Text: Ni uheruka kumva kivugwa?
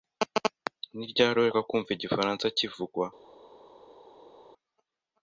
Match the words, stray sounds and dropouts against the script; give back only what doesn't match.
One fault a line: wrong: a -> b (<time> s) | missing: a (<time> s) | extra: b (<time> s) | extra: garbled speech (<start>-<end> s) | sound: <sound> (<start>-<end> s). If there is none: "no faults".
extra: ryari (1.1 s)
extra: igifaransa (1.9 s)